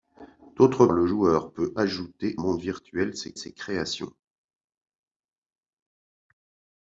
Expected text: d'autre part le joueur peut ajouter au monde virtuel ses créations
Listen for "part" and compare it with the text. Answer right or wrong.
wrong